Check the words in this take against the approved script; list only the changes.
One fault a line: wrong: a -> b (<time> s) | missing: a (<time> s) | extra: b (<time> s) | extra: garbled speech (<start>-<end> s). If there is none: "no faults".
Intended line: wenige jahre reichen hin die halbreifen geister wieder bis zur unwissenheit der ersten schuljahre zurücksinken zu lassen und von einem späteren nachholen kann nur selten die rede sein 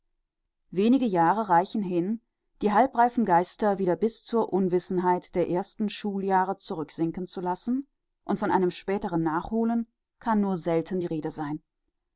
no faults